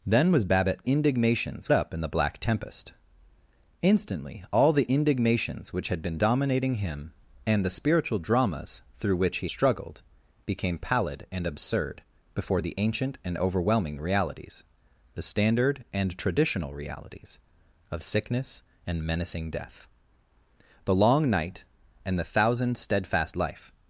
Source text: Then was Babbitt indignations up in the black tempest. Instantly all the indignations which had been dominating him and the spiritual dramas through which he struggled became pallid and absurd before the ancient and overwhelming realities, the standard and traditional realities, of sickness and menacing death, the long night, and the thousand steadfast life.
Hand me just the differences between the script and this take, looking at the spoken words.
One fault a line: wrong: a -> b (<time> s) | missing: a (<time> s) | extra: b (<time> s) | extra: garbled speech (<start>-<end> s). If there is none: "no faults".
no faults